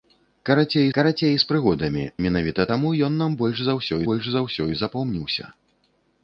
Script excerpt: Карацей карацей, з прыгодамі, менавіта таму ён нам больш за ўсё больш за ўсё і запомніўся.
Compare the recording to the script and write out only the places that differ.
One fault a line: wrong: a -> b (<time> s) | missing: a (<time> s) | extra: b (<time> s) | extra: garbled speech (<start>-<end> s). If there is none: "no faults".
no faults